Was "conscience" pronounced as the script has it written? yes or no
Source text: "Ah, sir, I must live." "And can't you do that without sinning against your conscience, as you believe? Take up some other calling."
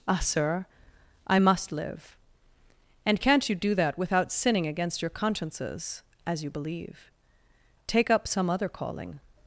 no